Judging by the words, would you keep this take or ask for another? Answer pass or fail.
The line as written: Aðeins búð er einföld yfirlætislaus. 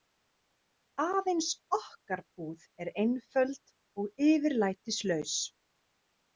fail